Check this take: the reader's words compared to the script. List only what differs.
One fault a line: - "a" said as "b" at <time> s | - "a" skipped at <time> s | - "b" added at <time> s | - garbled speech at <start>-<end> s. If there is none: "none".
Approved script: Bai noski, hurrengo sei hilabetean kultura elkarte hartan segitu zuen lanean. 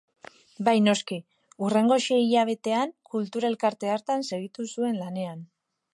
none